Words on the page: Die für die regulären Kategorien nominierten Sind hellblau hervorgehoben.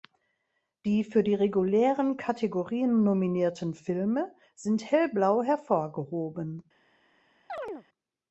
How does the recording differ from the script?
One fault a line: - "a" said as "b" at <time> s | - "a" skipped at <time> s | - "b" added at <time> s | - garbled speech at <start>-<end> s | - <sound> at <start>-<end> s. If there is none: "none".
- "Filme" added at 3.8 s
- chirp at 7.5-7.9 s